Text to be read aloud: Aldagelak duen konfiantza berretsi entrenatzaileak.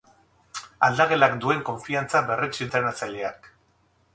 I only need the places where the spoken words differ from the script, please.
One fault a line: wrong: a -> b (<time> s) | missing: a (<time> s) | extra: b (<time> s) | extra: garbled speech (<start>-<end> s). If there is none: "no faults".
no faults